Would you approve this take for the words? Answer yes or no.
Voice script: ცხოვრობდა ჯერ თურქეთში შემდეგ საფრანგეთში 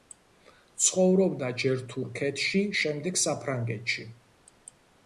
yes